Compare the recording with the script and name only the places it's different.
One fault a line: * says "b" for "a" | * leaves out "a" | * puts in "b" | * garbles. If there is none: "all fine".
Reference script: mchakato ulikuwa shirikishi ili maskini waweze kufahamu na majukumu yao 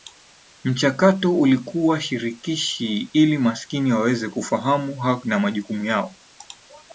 all fine